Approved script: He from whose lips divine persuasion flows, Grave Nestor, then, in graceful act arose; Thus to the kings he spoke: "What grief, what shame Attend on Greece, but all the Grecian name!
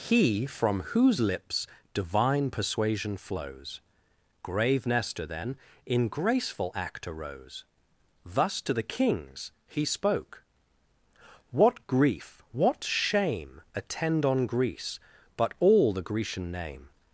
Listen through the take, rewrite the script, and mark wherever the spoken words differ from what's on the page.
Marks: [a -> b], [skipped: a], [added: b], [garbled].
He from whose lips divine persuasion flows, Grave Nestor, then, in graceful act arose; Thus to the kings he spoke: "What grief, what shame Attend on Greece, but all the Grecian name!